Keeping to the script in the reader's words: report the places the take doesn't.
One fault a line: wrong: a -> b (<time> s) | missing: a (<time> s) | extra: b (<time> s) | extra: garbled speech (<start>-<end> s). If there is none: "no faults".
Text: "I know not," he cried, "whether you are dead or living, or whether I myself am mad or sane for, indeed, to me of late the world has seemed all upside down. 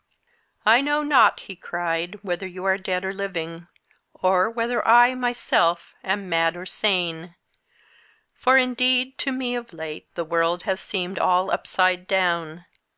no faults